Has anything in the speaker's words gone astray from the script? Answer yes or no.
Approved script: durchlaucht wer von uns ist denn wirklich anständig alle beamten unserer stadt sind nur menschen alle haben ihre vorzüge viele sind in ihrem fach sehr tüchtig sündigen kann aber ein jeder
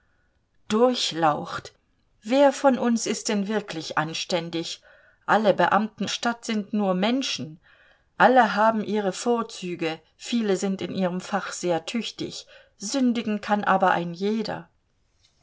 yes